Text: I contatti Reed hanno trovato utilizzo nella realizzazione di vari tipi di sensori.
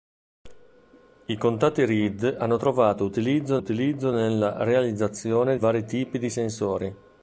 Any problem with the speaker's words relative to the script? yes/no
yes